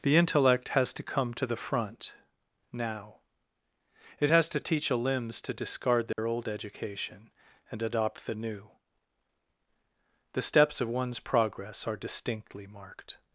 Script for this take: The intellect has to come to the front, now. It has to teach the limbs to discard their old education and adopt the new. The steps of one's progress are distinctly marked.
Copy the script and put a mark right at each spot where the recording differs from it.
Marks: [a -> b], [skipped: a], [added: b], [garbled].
The intellect has to come to the front, now. It has to teach [the -> a] limbs to discard their old education and adopt the new. The steps of one's progress are distinctly marked.